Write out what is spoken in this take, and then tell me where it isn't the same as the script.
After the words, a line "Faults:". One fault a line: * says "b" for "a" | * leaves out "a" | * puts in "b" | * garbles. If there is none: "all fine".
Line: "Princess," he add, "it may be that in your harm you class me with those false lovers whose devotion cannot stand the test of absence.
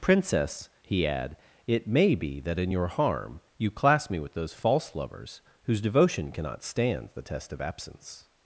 "Princess," he add, "it may be that in your harm you class me with those false lovers whose devotion cannot stand the test of absence.
Faults:
all fine